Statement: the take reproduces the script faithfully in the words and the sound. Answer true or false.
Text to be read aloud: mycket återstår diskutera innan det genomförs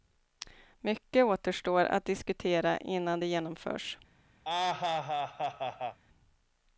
false